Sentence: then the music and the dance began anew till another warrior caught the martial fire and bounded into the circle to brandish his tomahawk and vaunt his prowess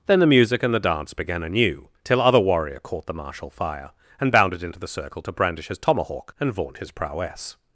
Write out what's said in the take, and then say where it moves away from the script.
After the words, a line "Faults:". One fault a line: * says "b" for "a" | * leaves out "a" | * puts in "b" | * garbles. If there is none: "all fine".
then the music and the dance began anew till other warrior caught the martial fire and bounded into the circle to brandish his tomahawk and vaunt his prowess
Faults:
* says "other" for "another"